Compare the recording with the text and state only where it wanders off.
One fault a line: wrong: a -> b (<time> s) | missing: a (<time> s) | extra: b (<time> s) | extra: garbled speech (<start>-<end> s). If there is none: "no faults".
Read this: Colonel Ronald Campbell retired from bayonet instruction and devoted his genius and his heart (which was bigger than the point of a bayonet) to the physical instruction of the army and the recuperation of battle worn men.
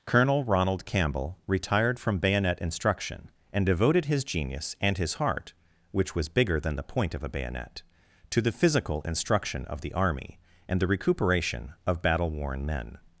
no faults